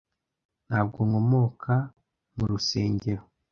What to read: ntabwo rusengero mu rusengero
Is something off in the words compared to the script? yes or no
yes